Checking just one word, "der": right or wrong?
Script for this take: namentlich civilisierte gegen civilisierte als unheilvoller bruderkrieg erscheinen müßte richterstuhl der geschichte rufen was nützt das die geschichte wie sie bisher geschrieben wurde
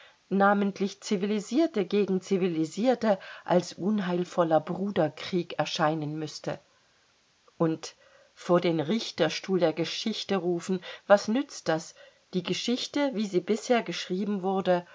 right